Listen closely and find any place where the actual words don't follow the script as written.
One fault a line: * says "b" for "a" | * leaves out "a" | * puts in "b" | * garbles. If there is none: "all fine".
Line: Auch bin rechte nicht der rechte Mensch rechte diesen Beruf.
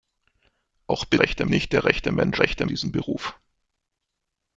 all fine